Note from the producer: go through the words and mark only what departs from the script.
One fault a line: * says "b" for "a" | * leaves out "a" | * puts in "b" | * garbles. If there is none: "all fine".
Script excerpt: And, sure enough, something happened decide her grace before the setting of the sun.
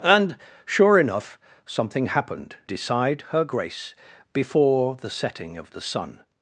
all fine